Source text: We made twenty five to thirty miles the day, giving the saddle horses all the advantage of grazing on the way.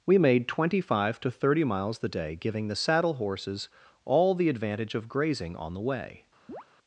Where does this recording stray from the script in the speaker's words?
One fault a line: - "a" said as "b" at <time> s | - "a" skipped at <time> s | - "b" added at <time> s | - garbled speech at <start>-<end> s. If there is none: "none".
none